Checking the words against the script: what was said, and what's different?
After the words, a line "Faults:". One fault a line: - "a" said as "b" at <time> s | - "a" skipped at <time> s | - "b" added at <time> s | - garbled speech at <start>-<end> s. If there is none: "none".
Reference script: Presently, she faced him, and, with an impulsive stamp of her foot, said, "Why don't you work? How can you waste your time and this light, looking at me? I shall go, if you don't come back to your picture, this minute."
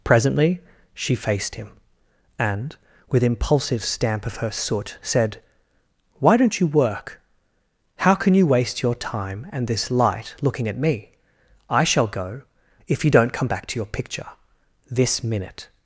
Presently, she faced him, and, with impulsive stamp of her soot, said, "Why don't you work? How can you waste your time and this light, looking at me? I shall go, if you don't come back to your picture, this minute."
Faults:
- "an" skipped at 3.2 s
- "foot" said as "soot" at 4.5 s